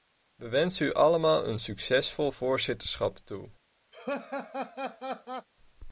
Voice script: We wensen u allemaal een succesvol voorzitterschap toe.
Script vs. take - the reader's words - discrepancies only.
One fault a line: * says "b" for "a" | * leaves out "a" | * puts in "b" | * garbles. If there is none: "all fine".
all fine